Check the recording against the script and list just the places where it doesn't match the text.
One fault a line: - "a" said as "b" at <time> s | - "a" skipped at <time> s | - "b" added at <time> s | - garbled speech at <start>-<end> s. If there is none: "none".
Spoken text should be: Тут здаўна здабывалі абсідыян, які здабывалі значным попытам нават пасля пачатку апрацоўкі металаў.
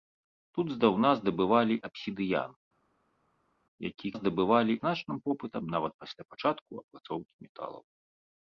none